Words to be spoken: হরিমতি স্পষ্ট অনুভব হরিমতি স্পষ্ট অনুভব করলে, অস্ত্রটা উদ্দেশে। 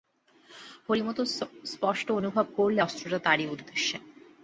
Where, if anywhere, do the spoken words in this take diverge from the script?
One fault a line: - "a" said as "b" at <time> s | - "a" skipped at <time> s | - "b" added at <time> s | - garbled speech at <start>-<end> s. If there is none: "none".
- "হরিমতি স্পষ্ট অনুভব" skipped at 2.5 s
- "তারই" added at 3.2 s